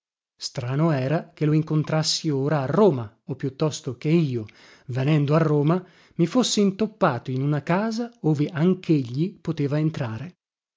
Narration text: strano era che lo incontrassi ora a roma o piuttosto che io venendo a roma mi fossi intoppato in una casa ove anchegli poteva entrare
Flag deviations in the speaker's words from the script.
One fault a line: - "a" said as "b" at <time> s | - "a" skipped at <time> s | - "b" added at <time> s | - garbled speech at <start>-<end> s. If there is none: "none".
none